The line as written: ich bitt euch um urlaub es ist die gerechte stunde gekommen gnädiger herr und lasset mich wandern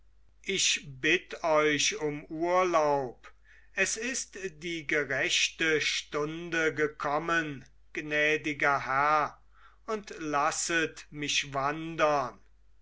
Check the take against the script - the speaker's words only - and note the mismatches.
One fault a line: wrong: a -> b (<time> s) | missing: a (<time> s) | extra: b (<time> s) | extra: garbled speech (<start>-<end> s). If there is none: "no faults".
no faults